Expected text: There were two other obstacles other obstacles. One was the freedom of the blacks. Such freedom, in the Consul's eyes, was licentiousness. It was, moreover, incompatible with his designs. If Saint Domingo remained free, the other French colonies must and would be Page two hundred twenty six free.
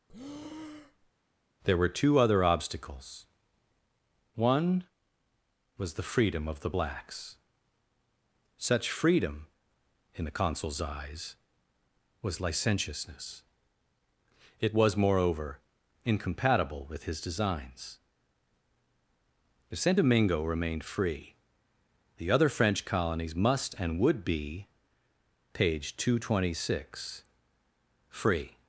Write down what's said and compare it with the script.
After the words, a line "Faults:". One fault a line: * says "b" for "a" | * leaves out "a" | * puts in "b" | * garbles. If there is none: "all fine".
There were two other obstacles. One was the freedom of the blacks. Such freedom, in the Consul's eyes, was licentiousness. It was, moreover, incompatible with his designs. If Saint Domingo remained free, the other French colonies must and would be Page two hundred twenty six free.
Faults:
* leaves out "other obstacles"